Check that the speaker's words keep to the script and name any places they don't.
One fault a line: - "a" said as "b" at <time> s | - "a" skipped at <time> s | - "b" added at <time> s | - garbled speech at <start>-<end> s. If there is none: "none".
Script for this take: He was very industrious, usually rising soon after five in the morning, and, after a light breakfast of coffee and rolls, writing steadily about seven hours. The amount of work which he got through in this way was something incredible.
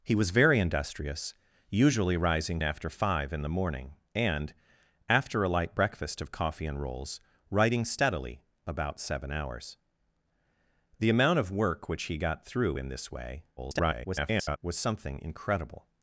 - "soon" skipped at 2.6 s
- garbled speech at 13.6-14.6 s